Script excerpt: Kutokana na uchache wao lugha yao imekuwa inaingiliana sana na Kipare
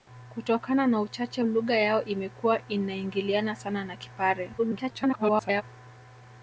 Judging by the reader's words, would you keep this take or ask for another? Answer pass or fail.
fail